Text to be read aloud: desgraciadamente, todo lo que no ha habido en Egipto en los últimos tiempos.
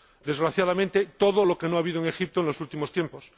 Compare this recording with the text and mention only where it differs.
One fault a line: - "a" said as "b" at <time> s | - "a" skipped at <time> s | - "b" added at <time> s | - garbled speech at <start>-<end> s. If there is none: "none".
none